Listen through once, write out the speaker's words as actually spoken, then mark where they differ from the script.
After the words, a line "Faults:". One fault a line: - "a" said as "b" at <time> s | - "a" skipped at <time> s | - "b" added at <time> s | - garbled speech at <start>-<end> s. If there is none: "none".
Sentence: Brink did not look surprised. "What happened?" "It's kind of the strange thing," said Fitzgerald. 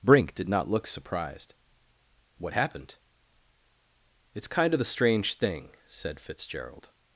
Brink did not look surprised. "What happened?" "It's kind of the strange thing," said Fitzgerald.
Faults:
none